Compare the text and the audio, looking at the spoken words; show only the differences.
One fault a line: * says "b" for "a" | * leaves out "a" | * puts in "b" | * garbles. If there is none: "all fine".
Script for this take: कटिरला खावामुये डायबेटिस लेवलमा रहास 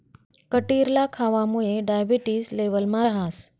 all fine